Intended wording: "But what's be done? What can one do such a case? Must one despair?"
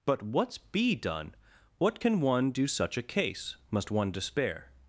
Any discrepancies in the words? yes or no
no